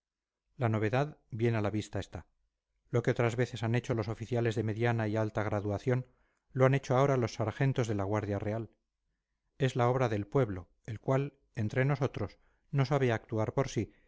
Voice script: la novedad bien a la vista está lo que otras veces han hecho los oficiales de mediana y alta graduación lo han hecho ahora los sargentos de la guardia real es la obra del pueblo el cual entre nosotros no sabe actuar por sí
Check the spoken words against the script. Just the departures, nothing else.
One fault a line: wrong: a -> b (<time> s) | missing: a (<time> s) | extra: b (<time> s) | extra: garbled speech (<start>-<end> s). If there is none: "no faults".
no faults